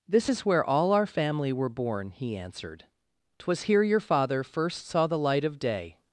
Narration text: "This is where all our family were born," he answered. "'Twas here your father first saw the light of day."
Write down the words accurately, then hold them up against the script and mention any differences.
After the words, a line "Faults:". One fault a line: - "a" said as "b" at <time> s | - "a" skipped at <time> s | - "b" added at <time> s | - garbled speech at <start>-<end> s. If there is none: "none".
"This is where all our family were born," he answered. "'Twas here your father first saw the light of day."
Faults:
none